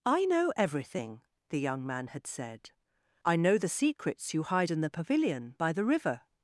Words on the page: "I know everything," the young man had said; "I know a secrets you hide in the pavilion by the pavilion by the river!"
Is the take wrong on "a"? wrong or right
wrong